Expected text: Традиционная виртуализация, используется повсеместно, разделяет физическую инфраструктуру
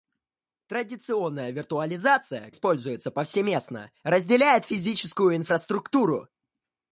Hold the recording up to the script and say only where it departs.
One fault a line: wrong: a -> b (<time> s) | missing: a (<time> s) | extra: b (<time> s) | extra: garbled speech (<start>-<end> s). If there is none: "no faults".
no faults